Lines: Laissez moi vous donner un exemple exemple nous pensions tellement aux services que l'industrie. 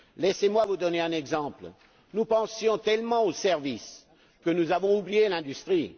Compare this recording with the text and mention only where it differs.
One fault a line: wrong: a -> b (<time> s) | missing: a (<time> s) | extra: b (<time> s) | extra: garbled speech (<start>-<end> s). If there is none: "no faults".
missing: exemple (1.7 s)
extra: nous avons oublié (4.5 s)